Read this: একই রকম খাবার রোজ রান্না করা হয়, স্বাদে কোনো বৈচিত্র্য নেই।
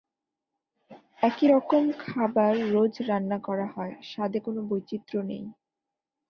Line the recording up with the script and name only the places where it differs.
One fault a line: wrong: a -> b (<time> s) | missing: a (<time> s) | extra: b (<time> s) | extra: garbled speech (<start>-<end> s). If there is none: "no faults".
no faults